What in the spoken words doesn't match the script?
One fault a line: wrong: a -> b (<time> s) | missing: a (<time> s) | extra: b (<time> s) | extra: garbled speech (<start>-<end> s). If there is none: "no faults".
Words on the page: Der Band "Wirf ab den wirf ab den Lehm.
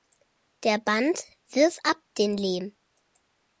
missing: wirf ab den (2.4 s)